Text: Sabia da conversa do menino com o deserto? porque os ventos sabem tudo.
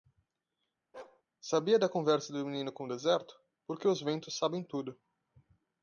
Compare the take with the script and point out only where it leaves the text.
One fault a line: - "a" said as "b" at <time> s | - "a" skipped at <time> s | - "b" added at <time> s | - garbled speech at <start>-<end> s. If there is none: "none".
none